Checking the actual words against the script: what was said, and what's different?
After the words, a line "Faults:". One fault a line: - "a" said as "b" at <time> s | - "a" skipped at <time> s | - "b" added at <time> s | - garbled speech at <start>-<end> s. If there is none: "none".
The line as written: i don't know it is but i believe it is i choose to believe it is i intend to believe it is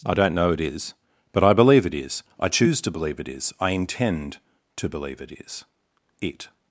i don't know it is but i believe it is i choose to believe it is i intend to believe it is it
Faults:
- "it" added at 6.2 s